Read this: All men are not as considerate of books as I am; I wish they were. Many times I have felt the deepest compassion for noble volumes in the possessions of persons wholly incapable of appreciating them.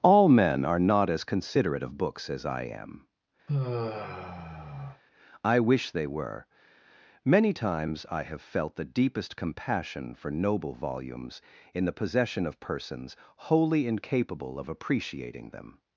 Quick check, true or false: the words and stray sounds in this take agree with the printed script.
false